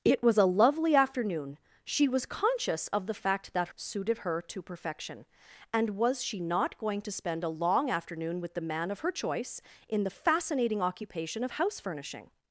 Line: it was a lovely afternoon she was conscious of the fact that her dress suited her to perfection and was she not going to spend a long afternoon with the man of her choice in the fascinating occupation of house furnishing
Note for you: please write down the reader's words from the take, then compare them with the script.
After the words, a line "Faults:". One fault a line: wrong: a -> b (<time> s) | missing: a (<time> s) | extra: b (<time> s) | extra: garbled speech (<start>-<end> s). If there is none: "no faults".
it was a lovely afternoon she was conscious of the fact that suited her to perfection and was she not going to spend a long afternoon with the man of her choice in the fascinating occupation of house furnishing
Faults:
missing: her dress (3.7 s)